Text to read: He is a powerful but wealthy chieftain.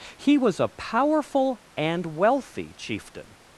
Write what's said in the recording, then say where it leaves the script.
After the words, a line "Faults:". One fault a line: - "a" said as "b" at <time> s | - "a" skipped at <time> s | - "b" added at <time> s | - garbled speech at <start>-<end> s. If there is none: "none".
He was a powerful and wealthy chieftain.
Faults:
- "is" said as "was" at 0.4 s
- "but" said as "and" at 1.8 s